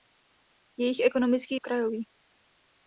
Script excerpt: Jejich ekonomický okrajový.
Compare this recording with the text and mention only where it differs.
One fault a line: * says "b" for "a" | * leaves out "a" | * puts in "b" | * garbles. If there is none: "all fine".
all fine